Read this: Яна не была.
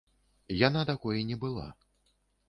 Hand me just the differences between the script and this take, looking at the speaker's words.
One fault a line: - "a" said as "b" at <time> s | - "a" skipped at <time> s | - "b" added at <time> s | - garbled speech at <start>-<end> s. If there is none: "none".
- "такой" added at 0.9 s